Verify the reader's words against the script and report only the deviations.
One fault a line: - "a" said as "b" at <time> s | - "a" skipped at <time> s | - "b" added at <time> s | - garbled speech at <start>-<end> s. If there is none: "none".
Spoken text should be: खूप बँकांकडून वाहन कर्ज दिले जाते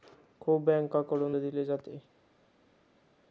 - "वाहन कर्ज" skipped at 1.4 s